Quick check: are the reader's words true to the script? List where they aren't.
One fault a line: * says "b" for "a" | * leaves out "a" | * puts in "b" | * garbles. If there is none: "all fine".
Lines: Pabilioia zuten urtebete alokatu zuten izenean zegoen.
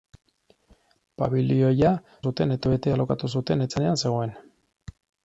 all fine